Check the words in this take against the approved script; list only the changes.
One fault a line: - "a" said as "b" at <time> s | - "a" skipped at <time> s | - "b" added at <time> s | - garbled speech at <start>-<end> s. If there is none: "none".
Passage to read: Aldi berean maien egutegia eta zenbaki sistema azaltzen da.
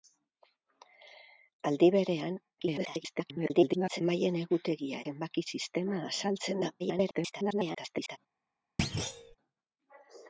- garbled speech at 2.6-4.0 s
- "eta" skipped at 5.0 s
- garbled speech at 6.8-8.2 s